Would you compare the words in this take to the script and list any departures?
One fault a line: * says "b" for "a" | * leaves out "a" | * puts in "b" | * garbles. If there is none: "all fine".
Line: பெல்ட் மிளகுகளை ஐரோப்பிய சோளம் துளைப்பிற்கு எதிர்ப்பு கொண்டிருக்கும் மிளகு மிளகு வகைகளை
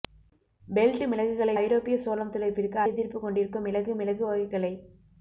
all fine